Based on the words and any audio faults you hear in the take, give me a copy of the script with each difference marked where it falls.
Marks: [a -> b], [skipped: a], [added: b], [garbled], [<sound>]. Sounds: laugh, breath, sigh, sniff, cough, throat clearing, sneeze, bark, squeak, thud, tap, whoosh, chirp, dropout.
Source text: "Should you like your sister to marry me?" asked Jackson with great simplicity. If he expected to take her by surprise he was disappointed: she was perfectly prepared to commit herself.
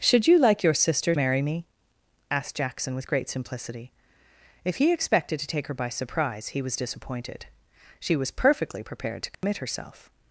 "Should you like your sister [skipped: to] marry me?" asked Jackson with great simplicity. If he expected to take her by surprise he was disappointed: she was perfectly prepared to commit [dropout] herself.